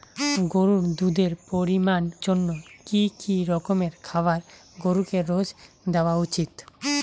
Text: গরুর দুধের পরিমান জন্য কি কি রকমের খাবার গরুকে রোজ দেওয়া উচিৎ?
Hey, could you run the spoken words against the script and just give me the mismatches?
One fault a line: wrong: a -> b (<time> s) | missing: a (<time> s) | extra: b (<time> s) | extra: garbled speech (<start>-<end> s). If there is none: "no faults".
no faults